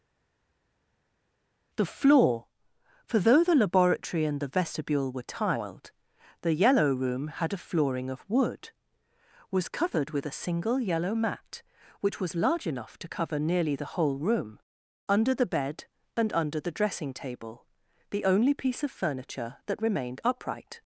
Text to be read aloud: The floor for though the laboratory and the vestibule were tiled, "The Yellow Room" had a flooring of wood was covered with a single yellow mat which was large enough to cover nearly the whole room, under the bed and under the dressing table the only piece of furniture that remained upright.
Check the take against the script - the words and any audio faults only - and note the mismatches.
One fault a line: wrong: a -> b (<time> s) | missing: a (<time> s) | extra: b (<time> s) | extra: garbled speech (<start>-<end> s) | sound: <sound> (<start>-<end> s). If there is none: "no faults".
no faults